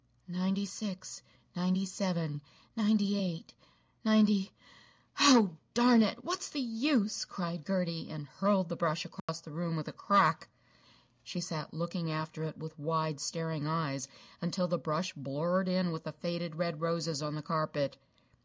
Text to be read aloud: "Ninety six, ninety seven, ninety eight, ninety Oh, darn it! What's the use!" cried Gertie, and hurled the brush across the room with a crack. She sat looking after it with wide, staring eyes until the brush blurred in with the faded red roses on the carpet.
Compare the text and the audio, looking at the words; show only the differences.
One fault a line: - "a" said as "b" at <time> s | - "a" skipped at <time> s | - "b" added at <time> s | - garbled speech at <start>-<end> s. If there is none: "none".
none